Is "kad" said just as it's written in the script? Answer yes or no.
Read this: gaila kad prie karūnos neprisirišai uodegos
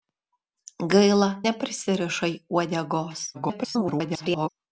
no